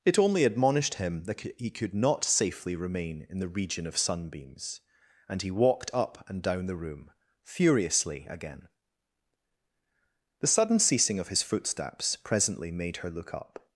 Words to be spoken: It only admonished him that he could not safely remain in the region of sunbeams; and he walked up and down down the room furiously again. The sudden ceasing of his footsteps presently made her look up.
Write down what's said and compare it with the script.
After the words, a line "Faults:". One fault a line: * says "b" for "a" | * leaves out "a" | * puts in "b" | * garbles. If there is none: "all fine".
It only admonished him that he could not safely remain in the region of sunbeams; and he walked up and down the room furiously again. The sudden ceasing of his footsteps presently made her look up.
Faults:
* leaves out "down"